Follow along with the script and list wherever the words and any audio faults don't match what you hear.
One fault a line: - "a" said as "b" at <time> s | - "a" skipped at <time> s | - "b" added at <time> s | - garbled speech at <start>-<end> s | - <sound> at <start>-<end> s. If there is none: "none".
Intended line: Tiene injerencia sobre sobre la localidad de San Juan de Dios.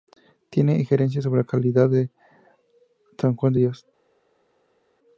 - "sobre" skipped at 1.4 s